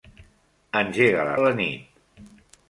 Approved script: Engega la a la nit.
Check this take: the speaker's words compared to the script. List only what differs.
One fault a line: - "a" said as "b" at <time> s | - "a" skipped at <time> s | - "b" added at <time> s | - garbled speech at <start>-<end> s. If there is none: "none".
none